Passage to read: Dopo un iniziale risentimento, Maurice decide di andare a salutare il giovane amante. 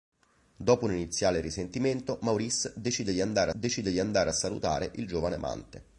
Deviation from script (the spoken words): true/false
true